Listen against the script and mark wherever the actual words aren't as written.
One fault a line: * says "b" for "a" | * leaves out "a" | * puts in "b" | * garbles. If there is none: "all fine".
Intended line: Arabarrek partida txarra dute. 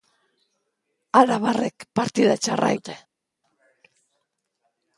all fine